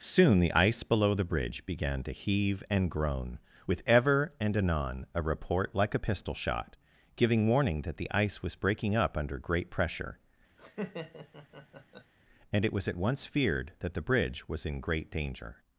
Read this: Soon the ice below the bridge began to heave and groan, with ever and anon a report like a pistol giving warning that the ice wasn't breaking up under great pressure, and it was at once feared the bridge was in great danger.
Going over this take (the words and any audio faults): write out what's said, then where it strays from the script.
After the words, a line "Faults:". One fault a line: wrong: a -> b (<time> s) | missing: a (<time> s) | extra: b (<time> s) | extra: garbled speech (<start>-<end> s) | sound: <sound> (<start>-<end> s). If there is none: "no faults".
Soon the ice below the bridge began to heave and groan, with ever and anon a report like a pistol shot, giving warning that the ice was breaking up under great pressure, and it was at once feared that the bridge was in great danger.
Faults:
extra: shot (6.3 s)
wrong: wasn't -> was (8.4 s)
sound: laugh (10.6-12.1 s)
extra: that (13.8 s)